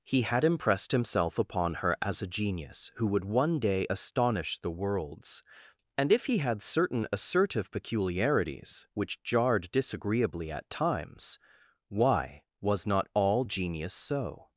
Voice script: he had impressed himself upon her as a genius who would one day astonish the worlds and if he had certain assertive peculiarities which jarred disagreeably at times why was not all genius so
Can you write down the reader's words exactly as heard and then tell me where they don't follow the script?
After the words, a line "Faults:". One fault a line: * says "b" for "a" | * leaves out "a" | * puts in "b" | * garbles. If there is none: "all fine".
he had impressed himself upon her as a genius who would one day astonish the worlds and if he had certain assertive peculiarities which jarred disagreeably at times why was not all genius so
Faults:
all fine